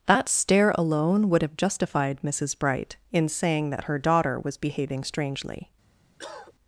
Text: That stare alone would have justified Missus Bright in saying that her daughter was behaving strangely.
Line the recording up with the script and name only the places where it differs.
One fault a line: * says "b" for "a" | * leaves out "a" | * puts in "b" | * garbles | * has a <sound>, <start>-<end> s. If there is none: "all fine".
* has a cough, 6.2-6.5 s